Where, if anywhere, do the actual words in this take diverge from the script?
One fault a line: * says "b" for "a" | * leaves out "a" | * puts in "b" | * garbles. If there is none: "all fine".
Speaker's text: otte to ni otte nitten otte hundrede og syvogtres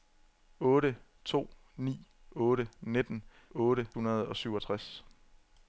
all fine